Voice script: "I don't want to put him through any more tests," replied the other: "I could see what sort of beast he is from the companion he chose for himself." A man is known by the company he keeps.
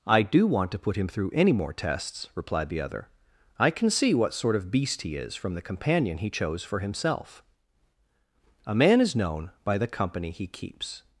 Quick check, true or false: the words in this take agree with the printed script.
false